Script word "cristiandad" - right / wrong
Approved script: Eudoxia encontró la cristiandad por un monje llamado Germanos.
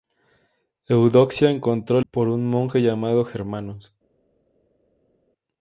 wrong